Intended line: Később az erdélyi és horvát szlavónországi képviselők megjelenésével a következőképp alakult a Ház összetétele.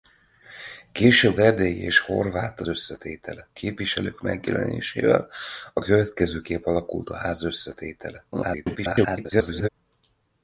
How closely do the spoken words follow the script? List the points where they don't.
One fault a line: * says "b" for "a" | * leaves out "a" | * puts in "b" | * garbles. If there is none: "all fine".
* leaves out "az"
* says "összetétele" for "szlavónországi"
* garbles